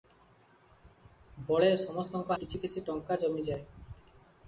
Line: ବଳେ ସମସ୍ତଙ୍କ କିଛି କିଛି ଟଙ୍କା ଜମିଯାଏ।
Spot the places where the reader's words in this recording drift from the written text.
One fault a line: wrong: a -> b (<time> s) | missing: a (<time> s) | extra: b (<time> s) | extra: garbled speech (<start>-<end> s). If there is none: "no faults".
no faults